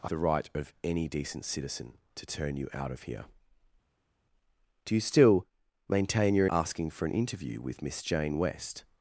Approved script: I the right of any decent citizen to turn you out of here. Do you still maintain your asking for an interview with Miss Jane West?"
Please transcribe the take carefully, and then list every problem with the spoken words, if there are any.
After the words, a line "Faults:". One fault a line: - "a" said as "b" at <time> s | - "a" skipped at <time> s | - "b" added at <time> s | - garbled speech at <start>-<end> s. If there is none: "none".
I the right of any decent citizen to turn you out of here. Do you still maintain your asking for an interview with Miss Jane West?"
Faults:
none